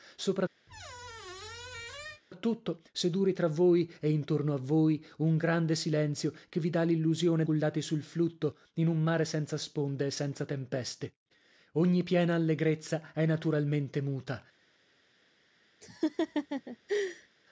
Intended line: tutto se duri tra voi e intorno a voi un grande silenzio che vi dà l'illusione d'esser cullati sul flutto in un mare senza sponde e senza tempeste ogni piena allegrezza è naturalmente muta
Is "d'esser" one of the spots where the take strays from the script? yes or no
yes